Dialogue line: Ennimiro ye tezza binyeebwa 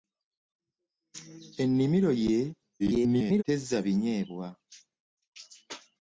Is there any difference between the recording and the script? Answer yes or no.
yes